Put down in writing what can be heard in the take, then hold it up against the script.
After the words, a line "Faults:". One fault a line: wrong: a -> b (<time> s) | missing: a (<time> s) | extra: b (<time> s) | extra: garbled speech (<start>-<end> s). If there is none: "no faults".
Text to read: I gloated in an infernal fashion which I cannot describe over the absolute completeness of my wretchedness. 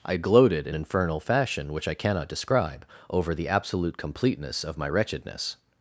I gloated in infernal fashion which I cannot describe over the absolute completeness of my wretchedness.
Faults:
missing: an (0.8 s)